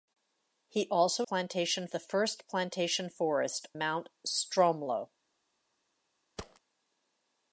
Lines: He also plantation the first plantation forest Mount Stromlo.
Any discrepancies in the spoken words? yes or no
no